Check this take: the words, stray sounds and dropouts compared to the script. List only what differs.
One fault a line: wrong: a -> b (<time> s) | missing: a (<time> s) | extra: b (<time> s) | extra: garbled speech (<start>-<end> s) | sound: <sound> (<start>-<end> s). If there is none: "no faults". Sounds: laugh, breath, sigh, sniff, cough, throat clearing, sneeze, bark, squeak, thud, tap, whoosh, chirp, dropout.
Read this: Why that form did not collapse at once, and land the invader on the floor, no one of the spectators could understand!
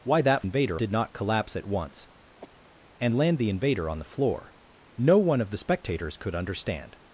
wrong: form -> invader (0.4 s)
sound: cough (2.4-2.8 s)